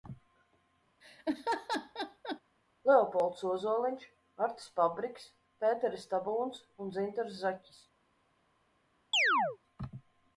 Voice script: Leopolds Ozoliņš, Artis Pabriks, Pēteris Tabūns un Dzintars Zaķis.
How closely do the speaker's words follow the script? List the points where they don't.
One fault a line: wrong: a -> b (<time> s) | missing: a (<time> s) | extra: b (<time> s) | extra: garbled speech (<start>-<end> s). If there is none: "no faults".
no faults